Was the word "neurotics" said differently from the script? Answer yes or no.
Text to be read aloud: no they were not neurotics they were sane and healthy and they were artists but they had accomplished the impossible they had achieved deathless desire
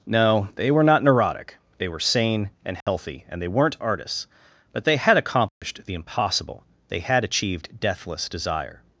yes